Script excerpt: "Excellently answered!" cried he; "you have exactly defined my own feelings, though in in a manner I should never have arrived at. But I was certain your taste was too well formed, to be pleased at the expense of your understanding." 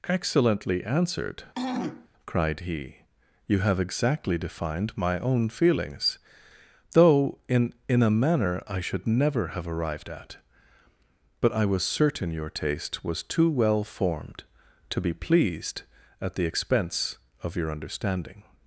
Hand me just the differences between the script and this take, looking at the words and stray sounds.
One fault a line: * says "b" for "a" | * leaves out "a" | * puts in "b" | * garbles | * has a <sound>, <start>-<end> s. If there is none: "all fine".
* has a throat clearing, 1.5-2.1 s